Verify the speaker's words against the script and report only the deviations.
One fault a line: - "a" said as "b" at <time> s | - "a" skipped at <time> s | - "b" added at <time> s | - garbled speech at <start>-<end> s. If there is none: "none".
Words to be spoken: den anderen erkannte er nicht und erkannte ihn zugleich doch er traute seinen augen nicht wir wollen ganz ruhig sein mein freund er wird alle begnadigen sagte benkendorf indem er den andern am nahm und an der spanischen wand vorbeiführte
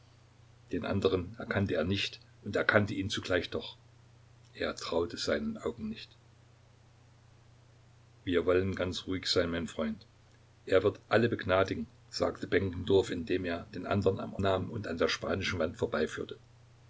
none